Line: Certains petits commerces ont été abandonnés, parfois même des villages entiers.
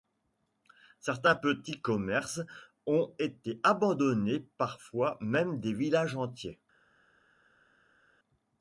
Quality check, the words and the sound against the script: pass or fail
pass